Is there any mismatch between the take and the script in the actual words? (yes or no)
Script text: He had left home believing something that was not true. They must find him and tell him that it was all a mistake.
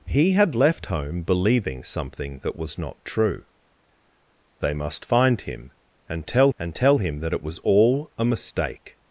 yes